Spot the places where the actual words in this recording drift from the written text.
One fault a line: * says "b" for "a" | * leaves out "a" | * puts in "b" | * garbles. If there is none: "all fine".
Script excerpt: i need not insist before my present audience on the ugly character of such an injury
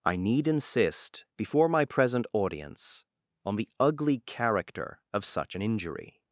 * leaves out "not"